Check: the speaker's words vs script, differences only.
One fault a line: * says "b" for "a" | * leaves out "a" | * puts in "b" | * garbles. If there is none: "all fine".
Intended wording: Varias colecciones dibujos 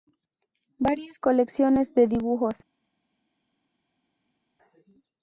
* puts in "de"